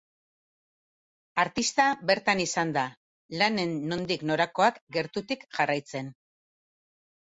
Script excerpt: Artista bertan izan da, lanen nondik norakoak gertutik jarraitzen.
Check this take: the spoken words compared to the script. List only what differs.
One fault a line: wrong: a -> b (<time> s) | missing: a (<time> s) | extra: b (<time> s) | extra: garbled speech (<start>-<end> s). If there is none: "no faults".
no faults